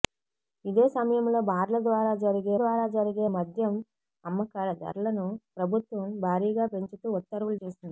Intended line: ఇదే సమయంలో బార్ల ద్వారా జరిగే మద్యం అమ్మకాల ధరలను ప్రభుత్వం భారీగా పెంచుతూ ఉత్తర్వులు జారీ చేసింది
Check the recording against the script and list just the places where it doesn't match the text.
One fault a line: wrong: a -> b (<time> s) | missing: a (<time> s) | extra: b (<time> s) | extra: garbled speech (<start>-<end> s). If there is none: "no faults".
extra: ద్వారా జరిగే (2.6 s)
missing: జారీ (7.6 s)